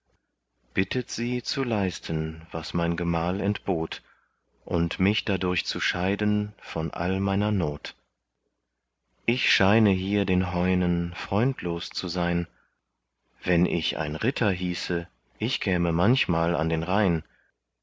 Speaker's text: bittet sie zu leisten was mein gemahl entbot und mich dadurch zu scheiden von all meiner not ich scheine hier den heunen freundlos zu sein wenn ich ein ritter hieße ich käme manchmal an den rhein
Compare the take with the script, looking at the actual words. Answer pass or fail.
pass